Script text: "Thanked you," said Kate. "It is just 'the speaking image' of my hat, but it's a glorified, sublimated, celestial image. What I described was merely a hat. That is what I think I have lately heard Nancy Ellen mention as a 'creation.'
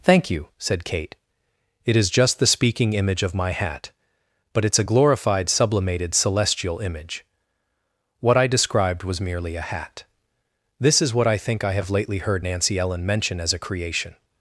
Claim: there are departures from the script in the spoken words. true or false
true